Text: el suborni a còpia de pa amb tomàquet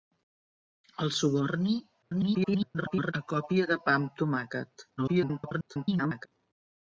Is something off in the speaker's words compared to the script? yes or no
yes